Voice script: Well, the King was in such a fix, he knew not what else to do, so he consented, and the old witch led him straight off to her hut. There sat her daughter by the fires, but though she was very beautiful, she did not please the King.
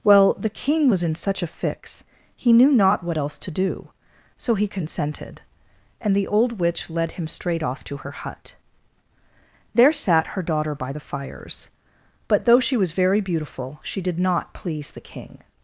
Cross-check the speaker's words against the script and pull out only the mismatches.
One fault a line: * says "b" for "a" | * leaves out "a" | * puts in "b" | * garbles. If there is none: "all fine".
all fine